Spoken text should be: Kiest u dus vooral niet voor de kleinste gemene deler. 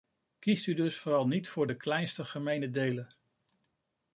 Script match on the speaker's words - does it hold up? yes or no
yes